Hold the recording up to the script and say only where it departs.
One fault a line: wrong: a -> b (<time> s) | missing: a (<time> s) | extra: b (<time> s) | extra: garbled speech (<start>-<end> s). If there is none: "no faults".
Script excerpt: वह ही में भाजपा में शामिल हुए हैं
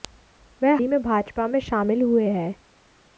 no faults